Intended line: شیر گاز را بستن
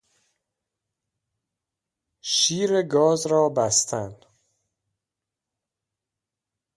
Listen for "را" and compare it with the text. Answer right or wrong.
right